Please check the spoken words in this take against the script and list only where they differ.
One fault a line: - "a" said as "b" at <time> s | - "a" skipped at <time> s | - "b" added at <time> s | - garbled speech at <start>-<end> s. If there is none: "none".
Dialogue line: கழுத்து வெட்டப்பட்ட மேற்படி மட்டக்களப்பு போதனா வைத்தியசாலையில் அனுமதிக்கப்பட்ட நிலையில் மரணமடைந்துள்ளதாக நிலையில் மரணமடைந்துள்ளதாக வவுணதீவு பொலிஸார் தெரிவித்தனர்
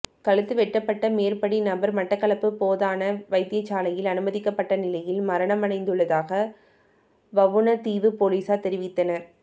- "நபர்" added at 1.6 s
- "நிலையில் மரணமடைந்துள்ளதாக" skipped at 6.4 s